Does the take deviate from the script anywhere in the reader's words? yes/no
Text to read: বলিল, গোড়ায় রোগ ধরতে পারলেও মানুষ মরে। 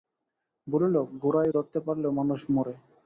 yes